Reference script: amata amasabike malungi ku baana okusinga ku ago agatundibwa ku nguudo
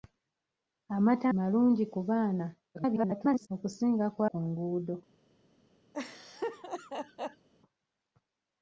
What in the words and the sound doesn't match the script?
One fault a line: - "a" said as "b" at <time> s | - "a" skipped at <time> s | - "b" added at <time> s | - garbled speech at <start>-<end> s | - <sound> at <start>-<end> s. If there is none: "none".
- "amasabike" skipped at 1.2 s
- garbled speech at 2.7-3.5 s
- "ago agatundibwa" skipped at 4.2 s
- laugh at 5.9-7.5 s